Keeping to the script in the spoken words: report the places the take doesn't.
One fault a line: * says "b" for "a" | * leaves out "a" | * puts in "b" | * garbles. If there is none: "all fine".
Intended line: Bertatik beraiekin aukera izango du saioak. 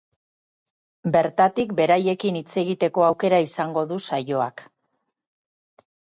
* puts in "hitz egiteko"